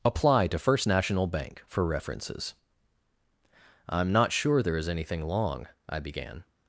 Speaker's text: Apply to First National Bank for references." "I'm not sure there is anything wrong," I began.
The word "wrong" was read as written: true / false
false